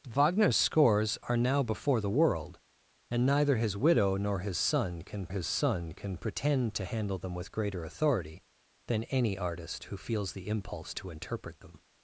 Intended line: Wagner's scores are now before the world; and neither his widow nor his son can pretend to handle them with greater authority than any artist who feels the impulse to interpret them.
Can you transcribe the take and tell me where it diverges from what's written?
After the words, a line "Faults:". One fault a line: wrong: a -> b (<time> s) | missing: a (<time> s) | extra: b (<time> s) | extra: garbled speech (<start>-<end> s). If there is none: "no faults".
Wagner's scores are now before the world; and neither his widow nor his son can his son can pretend to handle them with greater authority than any artist who feels the impulse to interpret them.
Faults:
extra: his son can (5.3 s)